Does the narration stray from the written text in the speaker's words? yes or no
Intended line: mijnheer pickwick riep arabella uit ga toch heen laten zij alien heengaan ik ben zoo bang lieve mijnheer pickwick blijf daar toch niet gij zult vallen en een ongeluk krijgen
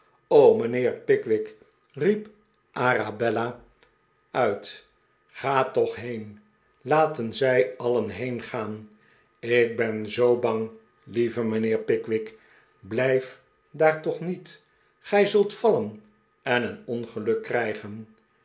no